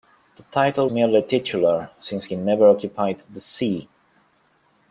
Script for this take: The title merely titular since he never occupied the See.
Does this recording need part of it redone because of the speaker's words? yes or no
no